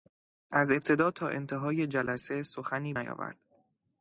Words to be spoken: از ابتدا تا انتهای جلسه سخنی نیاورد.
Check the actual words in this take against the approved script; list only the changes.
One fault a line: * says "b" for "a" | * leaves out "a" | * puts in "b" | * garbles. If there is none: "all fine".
all fine